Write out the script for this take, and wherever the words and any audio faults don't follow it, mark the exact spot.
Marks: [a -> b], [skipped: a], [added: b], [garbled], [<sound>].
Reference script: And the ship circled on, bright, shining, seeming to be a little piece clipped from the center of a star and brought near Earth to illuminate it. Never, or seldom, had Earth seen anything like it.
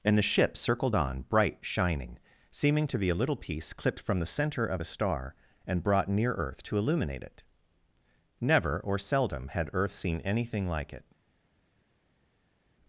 And the ship circled on, bright, shining, seeming to be a little piece clipped from the center of a star and brought near Earth to illuminate it. Never, or seldom, had Earth seen anything like it.